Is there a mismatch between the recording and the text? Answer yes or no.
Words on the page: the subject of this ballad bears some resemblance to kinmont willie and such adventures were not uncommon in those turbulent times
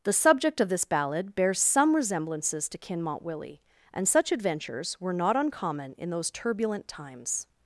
yes